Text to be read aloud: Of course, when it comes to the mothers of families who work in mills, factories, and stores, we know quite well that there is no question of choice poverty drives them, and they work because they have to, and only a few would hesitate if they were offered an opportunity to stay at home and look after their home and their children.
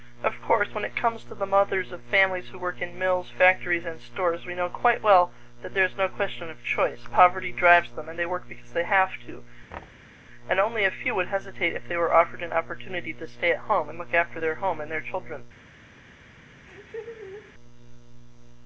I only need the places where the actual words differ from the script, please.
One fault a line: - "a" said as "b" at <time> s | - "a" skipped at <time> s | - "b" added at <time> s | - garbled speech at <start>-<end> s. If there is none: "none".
none